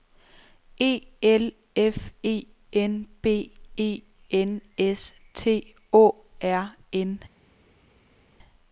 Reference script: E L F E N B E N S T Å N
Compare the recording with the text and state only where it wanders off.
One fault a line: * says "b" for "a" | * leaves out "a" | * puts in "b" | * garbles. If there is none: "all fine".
* puts in "R"